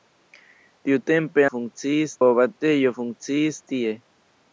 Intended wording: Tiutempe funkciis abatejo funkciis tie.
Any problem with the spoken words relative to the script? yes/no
no